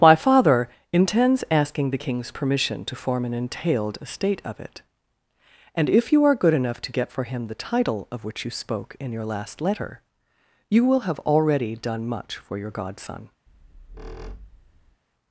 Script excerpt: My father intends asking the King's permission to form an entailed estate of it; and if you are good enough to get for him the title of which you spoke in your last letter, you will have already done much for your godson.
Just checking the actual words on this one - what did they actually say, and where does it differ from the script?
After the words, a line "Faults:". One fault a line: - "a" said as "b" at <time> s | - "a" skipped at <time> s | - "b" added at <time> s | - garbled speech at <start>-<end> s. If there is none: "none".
My father intends asking the King's permission to form an entailed estate of it; and if you are good enough to get for him the title of which you spoke in your last letter, you will have already done much for your godson.
Faults:
none